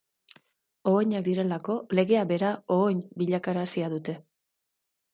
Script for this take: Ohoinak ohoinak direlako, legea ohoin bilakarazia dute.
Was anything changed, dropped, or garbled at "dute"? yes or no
no